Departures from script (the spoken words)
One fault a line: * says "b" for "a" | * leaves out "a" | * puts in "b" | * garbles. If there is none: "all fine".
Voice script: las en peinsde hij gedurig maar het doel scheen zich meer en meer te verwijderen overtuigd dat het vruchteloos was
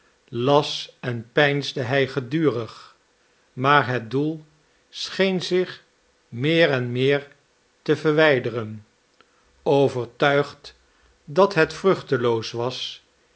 all fine